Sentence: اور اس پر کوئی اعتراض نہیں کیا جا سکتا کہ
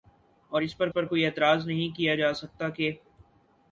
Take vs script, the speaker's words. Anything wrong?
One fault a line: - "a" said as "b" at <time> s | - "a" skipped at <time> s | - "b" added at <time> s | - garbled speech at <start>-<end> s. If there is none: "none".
- "پر" added at 0.9 s